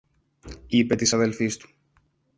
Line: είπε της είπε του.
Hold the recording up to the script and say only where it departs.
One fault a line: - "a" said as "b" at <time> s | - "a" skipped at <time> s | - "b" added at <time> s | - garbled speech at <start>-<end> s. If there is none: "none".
- "είπε" said as "αδελφής" at 1.1 s